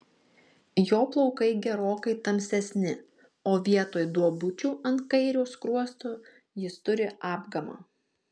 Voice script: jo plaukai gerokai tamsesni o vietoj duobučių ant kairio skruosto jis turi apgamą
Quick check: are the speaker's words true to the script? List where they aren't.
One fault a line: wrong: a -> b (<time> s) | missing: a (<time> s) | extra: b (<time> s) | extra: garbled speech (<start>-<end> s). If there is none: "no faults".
no faults